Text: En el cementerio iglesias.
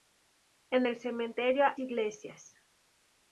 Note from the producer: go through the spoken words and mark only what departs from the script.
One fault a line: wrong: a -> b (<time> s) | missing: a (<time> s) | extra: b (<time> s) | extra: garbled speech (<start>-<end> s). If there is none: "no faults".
no faults